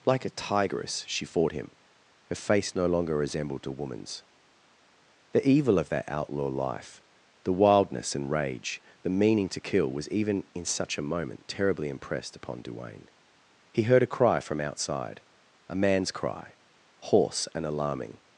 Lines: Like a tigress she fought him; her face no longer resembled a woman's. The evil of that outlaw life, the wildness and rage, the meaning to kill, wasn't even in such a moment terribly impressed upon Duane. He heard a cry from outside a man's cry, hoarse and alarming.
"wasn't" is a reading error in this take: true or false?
true